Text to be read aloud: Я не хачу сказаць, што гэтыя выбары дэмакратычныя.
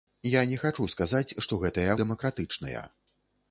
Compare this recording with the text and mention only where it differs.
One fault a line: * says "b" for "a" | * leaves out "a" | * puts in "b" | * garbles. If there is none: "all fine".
* leaves out "выбары"